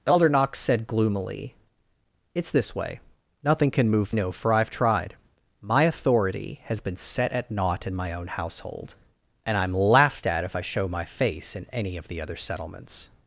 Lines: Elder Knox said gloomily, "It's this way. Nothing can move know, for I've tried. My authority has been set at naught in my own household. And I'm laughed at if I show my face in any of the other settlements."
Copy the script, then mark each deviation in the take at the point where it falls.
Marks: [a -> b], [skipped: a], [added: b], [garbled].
Elder Knox said gloomily, "It's this way. Nothing can move know, for I've tried. My authority has been set at naught in my own household. And I'm laughed at if I show my face in any of the other settlements."